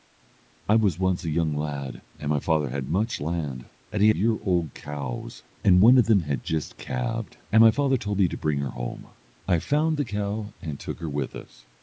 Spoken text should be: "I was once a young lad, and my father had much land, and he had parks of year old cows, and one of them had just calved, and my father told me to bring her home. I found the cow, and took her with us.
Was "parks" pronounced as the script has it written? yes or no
no